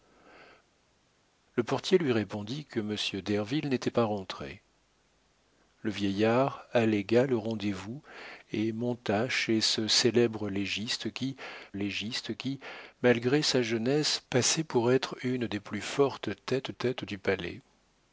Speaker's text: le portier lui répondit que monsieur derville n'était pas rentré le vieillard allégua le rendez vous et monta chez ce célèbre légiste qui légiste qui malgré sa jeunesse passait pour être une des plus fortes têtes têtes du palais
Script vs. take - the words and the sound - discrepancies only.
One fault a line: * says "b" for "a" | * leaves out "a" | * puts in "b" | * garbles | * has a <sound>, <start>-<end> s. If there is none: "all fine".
all fine